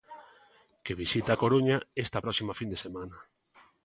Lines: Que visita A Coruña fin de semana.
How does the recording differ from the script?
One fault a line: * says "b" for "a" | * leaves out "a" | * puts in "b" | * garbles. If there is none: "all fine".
* puts in "esta próxima"